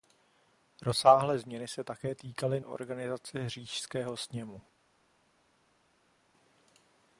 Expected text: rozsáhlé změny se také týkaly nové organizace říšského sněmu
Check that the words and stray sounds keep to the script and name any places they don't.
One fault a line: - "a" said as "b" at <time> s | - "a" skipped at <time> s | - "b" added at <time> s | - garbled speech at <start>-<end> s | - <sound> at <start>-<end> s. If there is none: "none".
- "nové" skipped at 2.6 s